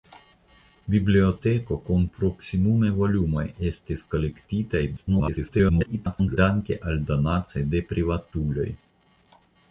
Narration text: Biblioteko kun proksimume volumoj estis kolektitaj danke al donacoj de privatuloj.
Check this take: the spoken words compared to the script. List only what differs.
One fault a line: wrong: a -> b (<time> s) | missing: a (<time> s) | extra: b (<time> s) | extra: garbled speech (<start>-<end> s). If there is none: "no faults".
extra: garbled speech (5.0-6.4 s)